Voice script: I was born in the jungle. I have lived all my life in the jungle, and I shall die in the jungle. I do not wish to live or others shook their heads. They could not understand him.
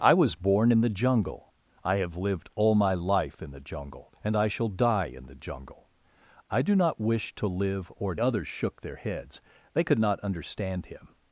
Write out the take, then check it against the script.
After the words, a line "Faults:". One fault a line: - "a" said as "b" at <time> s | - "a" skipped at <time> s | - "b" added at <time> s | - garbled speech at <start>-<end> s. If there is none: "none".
I was born in the jungle. I have lived all my life in the jungle, and I shall die in the jungle. I do not wish to live or others shook their heads. They could not understand him.
Faults:
none